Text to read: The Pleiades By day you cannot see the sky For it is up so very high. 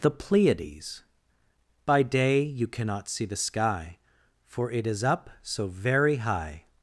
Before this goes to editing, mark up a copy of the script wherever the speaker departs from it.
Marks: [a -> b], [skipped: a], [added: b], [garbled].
The Pleiades By day you cannot see the sky For it is up so very high.